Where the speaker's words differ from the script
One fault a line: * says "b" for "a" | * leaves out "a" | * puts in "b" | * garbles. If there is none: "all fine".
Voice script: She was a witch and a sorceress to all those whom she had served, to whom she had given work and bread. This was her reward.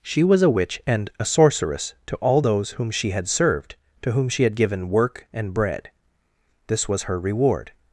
all fine